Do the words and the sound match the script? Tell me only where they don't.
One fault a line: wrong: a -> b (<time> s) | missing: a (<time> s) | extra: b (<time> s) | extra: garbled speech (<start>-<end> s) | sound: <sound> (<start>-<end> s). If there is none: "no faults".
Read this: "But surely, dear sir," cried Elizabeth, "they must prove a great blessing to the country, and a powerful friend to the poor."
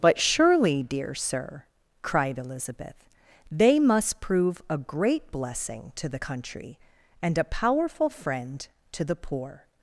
no faults